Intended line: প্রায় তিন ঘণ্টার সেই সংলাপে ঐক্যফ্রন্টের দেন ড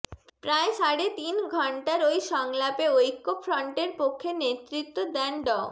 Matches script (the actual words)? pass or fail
fail